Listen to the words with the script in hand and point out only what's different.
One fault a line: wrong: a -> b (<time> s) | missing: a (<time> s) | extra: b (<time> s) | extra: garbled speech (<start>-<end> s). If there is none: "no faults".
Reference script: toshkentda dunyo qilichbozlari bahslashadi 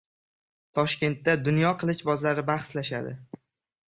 no faults